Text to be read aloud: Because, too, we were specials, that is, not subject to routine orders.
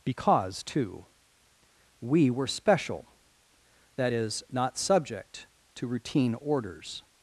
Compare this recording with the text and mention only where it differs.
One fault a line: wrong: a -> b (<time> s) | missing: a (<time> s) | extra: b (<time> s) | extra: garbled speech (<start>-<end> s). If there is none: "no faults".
wrong: specials -> special (2.5 s)